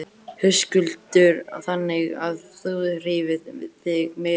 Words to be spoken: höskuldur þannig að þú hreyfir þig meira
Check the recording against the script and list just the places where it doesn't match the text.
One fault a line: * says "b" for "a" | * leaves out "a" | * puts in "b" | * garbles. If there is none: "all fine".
all fine